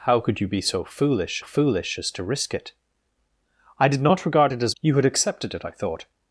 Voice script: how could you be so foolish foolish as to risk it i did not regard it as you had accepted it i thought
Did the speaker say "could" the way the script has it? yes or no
yes